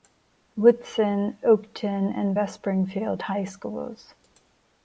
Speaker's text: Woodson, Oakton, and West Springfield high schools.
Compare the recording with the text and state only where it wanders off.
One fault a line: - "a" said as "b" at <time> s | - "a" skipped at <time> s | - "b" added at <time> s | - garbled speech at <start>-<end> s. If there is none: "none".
none